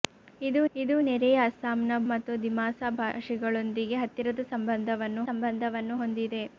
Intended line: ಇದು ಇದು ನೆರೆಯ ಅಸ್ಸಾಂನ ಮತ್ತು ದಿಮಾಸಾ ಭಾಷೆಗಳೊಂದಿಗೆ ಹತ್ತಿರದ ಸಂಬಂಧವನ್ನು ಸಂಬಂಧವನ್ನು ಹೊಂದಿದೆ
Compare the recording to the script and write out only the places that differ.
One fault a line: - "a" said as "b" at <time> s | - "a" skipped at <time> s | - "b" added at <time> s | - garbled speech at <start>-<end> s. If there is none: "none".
none